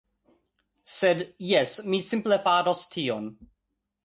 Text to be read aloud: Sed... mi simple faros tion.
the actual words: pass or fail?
fail